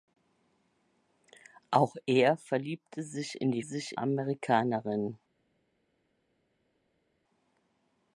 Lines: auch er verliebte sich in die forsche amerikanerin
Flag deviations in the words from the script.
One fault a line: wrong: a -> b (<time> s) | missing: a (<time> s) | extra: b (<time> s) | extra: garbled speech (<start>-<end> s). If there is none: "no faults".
wrong: forsche -> sich (3.6 s)